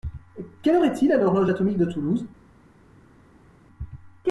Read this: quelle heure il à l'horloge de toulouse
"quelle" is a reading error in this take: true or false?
false